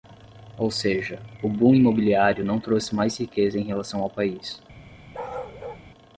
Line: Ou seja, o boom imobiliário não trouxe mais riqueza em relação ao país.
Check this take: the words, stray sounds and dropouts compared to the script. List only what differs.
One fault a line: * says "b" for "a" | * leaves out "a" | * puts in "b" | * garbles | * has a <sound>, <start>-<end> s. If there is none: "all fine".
* has a bark, 5.1-5.9 s